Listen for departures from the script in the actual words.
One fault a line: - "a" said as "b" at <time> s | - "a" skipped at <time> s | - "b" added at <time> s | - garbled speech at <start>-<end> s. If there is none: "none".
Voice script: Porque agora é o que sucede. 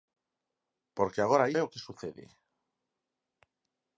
none